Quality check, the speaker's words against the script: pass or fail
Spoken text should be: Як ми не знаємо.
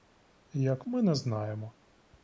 pass